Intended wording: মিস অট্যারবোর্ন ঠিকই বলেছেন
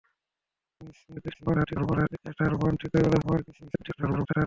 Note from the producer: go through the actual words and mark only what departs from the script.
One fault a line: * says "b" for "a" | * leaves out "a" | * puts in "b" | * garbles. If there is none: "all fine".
* garbles
* garbles